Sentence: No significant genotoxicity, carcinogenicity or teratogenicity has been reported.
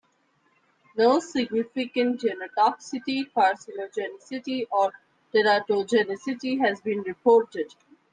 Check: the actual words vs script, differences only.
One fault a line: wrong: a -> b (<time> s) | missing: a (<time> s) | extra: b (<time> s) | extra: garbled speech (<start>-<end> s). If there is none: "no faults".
no faults